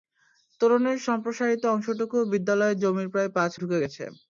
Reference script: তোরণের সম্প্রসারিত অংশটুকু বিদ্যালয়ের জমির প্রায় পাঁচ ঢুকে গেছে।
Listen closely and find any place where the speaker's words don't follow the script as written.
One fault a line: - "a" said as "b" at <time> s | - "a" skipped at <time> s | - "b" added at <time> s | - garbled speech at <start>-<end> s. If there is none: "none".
none